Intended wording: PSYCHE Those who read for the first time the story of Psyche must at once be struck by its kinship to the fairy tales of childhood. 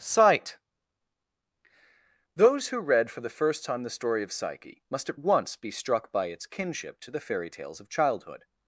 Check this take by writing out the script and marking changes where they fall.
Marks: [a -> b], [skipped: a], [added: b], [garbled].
[PSYCHE -> Sight] Those who read for the first time the story of Psyche must at once be struck by its kinship to the fairy tales of childhood.